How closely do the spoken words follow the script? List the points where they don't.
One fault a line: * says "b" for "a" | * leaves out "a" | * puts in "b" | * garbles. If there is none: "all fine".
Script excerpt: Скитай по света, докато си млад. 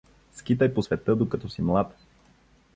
all fine